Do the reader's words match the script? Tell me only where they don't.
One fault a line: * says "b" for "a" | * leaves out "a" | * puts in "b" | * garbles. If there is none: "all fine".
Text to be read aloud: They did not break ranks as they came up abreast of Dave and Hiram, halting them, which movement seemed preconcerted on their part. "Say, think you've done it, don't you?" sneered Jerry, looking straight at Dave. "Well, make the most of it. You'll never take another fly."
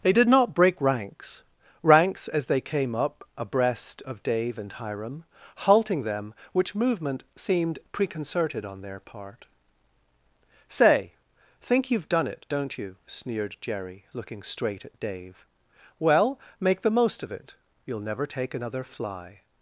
* puts in "ranks"